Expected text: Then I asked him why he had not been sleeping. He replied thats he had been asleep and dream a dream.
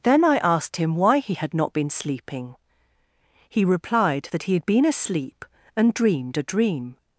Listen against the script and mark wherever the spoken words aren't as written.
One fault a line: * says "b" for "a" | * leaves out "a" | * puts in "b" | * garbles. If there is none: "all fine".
* says "that" for "thats"
* says "dreamed" for "dream"